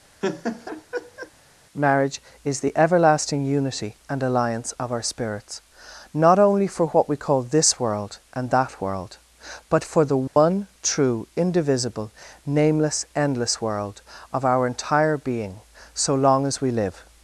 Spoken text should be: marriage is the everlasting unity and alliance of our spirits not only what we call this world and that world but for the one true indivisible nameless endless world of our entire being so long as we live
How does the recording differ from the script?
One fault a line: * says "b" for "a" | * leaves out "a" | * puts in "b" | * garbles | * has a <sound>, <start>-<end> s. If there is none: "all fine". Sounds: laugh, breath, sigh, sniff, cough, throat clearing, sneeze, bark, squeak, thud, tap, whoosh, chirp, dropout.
* has a laugh, 0.2-1.3 s
* puts in "for"
* has a dropout, 10.3-10.4 s